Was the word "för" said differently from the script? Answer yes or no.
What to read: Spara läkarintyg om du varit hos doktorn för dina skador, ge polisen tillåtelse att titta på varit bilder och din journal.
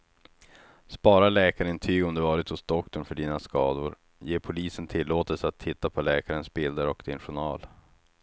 no